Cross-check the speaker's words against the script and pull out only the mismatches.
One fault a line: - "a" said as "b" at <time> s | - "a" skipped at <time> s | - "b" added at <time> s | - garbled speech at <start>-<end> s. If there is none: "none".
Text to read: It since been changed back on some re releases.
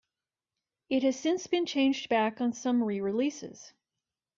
- "has" added at 1.0 s